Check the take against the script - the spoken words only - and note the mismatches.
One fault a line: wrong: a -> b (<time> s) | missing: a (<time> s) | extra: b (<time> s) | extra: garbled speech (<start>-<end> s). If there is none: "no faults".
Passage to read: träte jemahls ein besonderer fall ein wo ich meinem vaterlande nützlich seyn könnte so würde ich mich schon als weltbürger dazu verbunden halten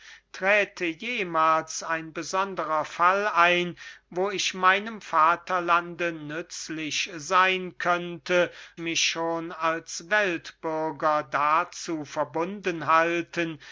missing: so würde ich (8.5 s)